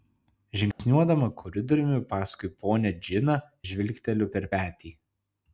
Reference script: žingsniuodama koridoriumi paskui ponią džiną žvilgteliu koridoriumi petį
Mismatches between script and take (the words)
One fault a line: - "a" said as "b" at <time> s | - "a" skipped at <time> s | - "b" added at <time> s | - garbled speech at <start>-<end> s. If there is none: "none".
- "koridoriumi" said as "per" at 4.4 s